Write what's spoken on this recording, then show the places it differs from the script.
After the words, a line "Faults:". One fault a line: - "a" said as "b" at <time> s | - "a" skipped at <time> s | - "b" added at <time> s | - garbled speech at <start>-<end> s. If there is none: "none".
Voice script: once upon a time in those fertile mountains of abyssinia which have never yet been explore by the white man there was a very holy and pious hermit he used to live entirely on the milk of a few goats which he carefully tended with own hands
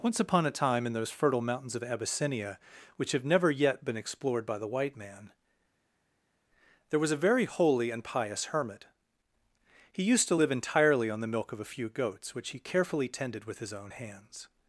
once upon a time in those fertile mountains of abyssinia which have never yet been explored by the white man there was a very holy and pious hermit he used to live entirely on the milk of a few goats which he carefully tended with his own hands
Faults:
- "explore" said as "explored" at 4.0 s
- "his" added at 13.6 s